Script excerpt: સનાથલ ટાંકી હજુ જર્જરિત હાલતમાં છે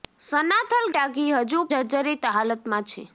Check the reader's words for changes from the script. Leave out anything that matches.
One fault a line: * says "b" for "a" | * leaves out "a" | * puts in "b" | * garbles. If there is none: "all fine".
all fine